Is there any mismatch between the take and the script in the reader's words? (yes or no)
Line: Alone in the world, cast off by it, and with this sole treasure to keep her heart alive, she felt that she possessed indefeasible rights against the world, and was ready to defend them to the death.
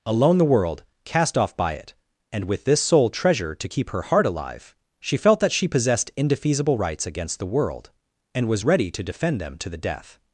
yes